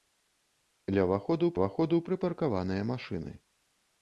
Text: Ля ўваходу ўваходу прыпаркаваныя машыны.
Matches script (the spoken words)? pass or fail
pass